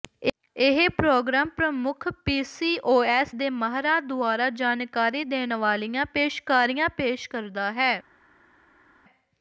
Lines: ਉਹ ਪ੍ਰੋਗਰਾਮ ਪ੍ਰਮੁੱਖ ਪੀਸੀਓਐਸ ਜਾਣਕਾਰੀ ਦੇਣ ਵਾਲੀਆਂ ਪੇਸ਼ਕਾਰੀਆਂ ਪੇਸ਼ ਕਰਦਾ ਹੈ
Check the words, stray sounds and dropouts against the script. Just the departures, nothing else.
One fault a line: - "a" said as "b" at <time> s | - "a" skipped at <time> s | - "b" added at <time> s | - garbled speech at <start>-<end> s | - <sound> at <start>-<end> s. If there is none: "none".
- "ਉਹ" said as "ਇਹ" at 0.6 s
- "ਦੇ ਮਾਹਰਾਂ ਦੁਆਰਾ" added at 3.3 s